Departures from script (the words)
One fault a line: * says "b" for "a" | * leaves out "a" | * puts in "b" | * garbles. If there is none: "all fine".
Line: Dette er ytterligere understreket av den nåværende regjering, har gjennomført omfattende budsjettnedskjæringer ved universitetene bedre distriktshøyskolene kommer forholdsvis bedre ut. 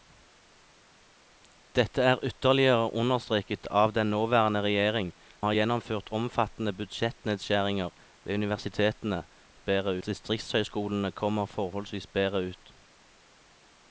all fine